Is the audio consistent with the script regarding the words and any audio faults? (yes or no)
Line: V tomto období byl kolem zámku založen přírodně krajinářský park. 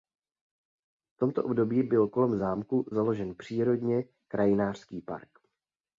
yes